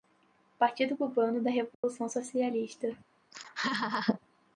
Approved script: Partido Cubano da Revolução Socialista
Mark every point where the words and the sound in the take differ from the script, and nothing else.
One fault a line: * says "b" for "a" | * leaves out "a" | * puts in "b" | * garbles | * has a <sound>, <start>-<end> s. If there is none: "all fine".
* has a dropout, 1.7-1.8 s
* has a laugh, 3.3-4.2 s